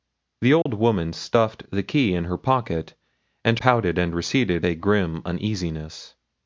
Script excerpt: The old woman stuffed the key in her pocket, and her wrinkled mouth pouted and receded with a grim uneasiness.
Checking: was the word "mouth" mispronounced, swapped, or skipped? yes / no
yes